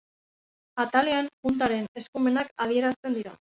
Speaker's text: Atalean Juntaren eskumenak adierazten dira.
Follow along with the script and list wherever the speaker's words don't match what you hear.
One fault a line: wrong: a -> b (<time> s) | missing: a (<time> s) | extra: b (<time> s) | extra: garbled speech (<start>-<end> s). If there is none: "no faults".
no faults